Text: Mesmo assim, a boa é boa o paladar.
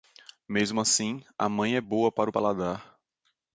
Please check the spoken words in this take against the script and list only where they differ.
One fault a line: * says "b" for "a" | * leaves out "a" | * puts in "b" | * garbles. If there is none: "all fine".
* says "mãe" for "boa"
* puts in "para"